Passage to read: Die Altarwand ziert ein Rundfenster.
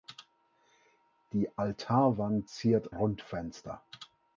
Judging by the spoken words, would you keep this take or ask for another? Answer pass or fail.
fail